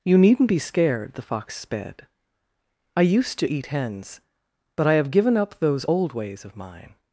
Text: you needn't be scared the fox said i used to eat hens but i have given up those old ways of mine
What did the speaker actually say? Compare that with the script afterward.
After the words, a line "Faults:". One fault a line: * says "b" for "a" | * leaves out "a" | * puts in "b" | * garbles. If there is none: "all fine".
you needn't be scared the fox sped i used to eat hens but i have given up those old ways of mine
Faults:
* says "sped" for "said"